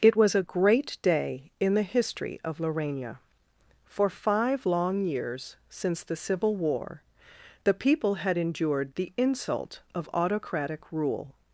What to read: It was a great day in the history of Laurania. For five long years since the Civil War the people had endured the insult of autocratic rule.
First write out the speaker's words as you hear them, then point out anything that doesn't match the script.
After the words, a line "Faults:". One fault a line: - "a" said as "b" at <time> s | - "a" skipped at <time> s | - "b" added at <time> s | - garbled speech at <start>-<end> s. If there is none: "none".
It was a great day in the history of Laurania. For five long years since the Civil War the people had endured the insult of autocratic rule.
Faults:
none